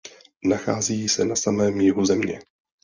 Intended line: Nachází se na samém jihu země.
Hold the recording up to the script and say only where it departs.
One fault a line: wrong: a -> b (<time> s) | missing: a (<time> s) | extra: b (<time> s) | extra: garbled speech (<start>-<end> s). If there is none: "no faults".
no faults